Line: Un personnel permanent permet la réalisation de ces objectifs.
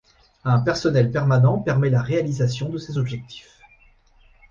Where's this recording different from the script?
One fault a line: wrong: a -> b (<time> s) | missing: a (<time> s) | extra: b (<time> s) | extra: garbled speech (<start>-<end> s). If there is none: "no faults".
no faults